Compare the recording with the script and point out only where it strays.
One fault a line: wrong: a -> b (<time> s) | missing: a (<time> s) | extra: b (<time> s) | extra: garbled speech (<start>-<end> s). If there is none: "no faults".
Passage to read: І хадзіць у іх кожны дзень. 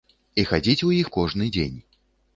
no faults